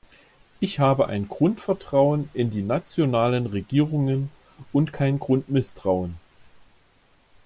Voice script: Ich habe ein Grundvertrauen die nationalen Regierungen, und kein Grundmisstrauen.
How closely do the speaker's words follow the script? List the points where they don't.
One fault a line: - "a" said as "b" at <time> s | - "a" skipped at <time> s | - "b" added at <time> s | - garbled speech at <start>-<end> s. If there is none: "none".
- "in" added at 2.3 s